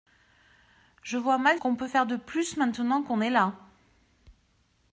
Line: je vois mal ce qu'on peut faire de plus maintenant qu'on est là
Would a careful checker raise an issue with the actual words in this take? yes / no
yes